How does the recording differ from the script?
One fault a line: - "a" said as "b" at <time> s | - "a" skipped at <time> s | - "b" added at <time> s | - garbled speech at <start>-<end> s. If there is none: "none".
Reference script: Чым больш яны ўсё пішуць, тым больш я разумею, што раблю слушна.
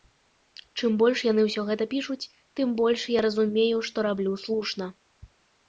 - "гэта" added at 1.7 s